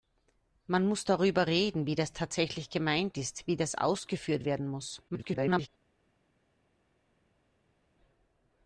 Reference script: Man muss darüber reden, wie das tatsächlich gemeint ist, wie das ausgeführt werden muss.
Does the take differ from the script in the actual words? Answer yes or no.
yes